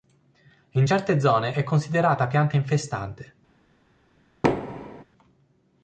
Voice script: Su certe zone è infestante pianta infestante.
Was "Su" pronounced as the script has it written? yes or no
no